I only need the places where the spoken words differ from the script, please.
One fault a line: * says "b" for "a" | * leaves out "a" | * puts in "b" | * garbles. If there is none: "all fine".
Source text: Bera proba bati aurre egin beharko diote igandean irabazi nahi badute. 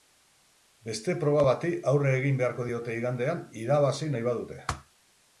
* says "Beste" for "Bera"